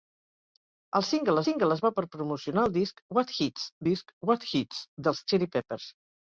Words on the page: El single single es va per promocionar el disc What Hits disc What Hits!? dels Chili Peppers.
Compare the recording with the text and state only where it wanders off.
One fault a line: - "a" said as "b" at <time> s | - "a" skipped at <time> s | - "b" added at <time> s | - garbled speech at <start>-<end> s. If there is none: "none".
none